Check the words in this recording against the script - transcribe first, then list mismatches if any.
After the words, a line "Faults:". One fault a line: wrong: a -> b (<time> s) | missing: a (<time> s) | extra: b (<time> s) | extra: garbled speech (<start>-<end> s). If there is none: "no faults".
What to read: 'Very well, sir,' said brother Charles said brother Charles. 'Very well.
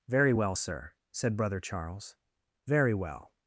'Very well, sir,' said brother Charles. 'Very well.
Faults:
missing: said brother Charles (2.2 s)